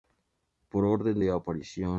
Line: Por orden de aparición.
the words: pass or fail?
pass